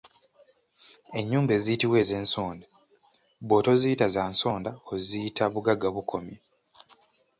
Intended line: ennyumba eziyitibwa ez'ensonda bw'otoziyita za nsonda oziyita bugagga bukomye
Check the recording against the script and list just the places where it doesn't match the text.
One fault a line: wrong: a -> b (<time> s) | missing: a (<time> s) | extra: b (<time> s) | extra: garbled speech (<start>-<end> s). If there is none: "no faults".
no faults